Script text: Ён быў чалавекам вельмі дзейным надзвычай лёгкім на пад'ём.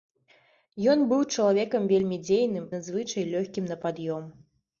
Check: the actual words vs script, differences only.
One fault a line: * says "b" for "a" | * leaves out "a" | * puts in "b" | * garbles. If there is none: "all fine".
all fine